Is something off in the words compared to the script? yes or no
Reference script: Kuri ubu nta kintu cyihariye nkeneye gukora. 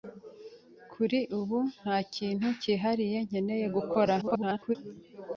yes